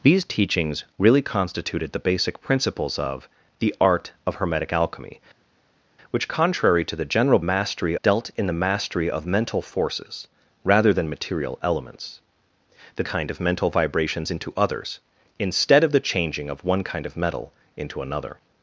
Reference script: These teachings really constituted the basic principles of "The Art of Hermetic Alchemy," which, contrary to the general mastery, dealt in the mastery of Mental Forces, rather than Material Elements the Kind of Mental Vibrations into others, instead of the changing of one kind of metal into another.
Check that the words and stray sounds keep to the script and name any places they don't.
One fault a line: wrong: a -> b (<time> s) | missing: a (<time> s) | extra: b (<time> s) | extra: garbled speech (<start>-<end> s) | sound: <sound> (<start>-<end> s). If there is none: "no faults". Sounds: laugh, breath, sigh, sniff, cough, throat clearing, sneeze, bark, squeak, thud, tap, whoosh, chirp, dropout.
no faults